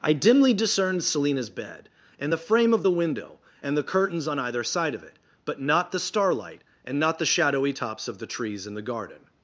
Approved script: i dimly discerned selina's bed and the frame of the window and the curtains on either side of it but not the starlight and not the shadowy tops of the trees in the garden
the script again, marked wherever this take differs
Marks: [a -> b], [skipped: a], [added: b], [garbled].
i dimly discerned selina's bed and the frame of the window and the curtains on either side of it but not the starlight and not the shadowy tops of the trees in the garden